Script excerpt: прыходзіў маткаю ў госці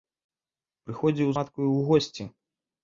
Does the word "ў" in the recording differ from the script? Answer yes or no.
no